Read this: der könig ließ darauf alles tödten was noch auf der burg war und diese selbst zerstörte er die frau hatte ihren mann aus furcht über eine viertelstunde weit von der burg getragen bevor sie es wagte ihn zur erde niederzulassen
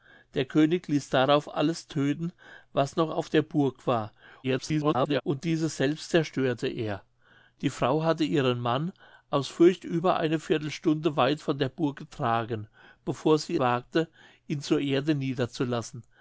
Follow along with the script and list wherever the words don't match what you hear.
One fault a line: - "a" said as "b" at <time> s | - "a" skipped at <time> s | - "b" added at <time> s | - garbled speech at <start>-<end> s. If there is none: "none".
- garbled speech at 4.4-5.2 s
- "es" skipped at 13.6 s